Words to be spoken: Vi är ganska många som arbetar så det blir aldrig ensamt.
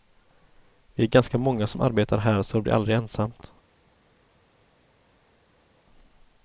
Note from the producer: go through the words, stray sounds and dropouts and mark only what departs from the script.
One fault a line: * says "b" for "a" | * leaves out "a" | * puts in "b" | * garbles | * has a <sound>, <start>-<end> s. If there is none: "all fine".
* puts in "här"